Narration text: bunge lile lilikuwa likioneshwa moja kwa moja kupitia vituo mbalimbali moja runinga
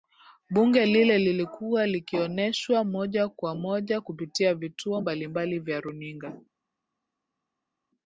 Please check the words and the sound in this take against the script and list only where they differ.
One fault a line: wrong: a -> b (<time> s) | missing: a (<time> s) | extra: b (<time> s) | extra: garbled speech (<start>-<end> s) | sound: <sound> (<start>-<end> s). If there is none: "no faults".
wrong: moja -> vya (5.6 s)